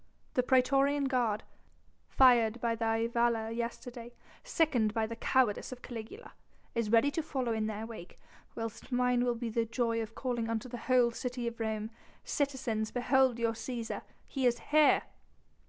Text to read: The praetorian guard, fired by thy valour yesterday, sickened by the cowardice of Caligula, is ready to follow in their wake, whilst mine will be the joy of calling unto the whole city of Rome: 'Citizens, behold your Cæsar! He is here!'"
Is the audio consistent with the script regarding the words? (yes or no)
yes